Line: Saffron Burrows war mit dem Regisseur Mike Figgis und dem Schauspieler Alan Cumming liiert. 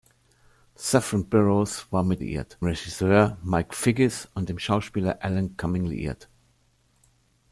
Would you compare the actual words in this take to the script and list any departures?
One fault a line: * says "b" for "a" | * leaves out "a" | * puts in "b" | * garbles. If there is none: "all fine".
* says "liiert" for "dem"